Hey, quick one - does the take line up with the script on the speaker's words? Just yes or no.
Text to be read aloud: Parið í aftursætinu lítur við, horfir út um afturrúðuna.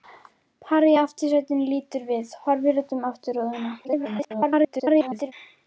no